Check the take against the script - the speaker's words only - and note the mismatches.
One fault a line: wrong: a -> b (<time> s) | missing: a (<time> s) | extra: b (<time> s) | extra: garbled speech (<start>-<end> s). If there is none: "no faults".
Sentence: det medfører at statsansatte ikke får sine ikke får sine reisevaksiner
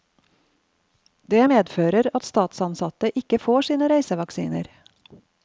missing: ikke får sine (3.9 s)